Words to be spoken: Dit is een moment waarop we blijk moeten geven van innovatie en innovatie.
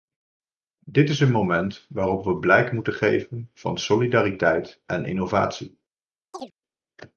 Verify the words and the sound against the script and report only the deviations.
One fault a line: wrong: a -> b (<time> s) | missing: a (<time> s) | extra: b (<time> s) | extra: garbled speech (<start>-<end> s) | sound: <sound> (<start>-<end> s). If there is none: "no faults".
wrong: innovatie -> solidariteit (3.8 s)
sound: chirp (6.3-6.5 s)